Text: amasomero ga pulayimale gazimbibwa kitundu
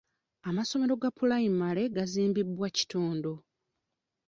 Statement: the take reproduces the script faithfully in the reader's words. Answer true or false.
true